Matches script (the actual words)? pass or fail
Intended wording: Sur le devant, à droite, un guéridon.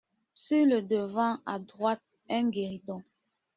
pass